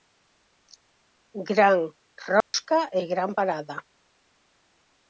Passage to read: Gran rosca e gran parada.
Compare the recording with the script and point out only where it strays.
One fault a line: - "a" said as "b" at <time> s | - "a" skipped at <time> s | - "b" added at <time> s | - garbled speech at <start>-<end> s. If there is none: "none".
none